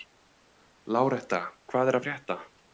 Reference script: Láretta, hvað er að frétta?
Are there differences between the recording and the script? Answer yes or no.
no